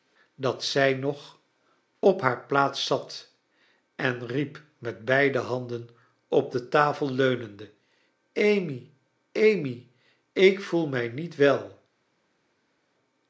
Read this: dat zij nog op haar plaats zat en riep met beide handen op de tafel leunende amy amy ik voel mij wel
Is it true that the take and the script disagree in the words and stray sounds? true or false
true